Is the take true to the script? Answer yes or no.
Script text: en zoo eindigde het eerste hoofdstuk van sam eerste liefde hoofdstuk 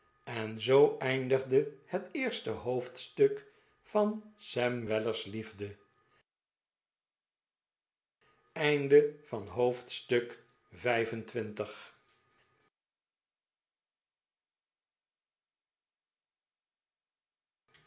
no